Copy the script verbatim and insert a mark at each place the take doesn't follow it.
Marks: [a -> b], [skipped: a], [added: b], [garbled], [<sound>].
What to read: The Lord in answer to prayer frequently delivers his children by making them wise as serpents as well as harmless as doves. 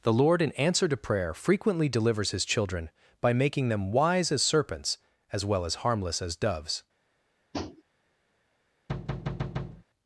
The Lord in answer to prayer frequently delivers his children by making them wise as serpents as well as harmless as doves. [tap] [thud]